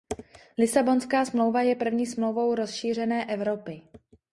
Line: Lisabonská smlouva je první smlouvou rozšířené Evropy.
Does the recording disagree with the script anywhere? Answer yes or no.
no